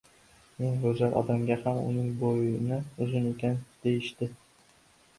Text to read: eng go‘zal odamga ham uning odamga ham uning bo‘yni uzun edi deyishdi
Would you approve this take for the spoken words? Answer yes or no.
no